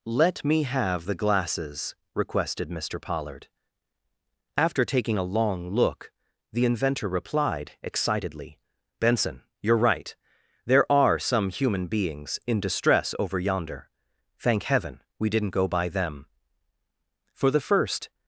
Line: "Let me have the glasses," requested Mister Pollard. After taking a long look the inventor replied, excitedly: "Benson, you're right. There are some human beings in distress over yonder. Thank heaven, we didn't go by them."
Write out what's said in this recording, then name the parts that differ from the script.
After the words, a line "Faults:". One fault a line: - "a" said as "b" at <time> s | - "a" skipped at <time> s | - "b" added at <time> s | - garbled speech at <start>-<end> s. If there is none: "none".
"Let me have the glasses," requested Mister Pollard. After taking a long look the inventor replied, excitedly: "Benson, you're right. There are some human beings in distress over yonder. Thank heaven, we didn't go by them." For the first
Faults:
- "For the first" added at 17.3 s